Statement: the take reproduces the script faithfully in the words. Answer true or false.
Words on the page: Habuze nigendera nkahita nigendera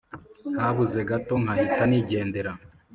false